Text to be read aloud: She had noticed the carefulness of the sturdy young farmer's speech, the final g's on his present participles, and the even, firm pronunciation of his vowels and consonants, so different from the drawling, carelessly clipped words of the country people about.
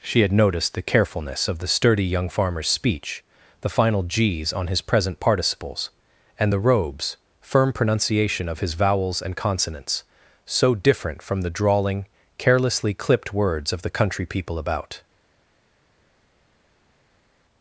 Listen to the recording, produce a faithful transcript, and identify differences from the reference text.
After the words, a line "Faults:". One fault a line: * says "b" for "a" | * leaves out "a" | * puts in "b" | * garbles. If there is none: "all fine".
She had noticed the carefulness of the sturdy young farmer's speech, the final g's on his present participles, and the robes, firm pronunciation of his vowels and consonants, so different from the drawling, carelessly clipped words of the country people about.
Faults:
* says "robes" for "even"